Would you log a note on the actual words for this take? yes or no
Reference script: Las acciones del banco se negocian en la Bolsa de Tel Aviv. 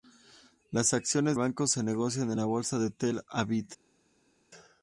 yes